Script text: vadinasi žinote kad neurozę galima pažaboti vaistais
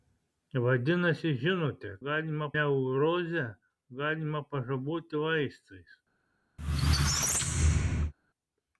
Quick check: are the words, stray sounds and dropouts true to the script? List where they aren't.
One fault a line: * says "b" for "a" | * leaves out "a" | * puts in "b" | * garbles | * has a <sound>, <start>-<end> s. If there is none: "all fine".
* says "galima" for "kad"
* has a squeak, 6.6-8.1 s